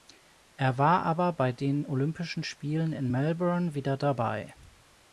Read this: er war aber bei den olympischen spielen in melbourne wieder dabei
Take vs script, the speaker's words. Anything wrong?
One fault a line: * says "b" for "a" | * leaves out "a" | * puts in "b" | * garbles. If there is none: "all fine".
all fine